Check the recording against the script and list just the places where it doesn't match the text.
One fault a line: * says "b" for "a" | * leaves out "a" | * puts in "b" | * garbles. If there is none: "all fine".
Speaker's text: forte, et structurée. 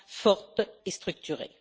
all fine